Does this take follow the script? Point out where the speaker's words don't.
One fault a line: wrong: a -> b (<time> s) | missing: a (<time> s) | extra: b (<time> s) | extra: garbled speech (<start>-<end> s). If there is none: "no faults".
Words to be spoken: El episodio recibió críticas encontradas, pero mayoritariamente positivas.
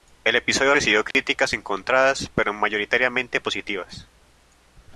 no faults